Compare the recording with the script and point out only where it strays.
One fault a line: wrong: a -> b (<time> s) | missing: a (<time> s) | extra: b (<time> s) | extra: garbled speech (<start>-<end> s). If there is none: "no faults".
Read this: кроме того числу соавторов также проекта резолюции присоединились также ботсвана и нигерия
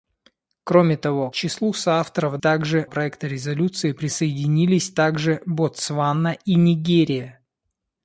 no faults